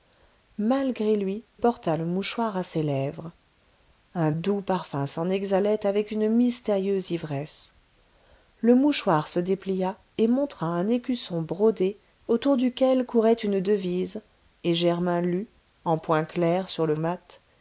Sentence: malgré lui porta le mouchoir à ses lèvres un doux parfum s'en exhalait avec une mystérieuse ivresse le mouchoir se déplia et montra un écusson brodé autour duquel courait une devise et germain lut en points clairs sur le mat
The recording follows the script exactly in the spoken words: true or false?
true